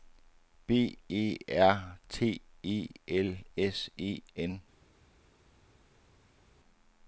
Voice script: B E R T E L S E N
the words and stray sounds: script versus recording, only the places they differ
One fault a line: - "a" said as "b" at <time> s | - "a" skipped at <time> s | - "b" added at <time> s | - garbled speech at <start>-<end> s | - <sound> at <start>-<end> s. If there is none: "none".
none